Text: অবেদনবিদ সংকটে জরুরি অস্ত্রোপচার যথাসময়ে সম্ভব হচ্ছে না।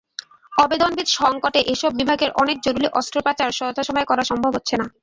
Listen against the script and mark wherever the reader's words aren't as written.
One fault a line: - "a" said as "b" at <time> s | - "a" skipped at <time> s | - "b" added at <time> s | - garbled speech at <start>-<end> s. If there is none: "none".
- "এসব বিভাগের অনেক" added at 1.7 s
- "করা" added at 4.1 s